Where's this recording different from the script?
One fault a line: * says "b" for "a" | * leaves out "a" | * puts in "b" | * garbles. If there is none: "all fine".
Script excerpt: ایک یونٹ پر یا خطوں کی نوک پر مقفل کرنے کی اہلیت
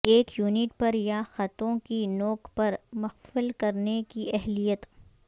all fine